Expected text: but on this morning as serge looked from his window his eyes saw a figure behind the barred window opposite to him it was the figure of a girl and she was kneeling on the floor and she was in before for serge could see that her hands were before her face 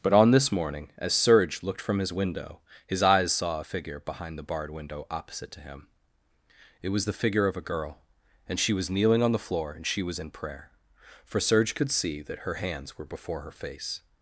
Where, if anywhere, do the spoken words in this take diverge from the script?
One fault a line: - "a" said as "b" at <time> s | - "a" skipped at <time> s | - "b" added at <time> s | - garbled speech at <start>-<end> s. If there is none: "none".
- "before" said as "prayer" at 10.3 s